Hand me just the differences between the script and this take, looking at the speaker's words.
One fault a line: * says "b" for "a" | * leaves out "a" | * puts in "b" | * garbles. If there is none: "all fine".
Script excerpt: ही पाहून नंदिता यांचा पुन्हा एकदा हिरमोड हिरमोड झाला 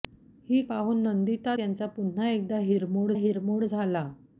all fine